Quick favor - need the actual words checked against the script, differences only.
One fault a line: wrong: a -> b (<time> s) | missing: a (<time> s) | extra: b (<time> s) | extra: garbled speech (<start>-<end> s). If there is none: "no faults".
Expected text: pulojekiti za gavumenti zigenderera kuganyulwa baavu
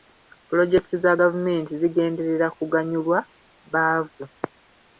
no faults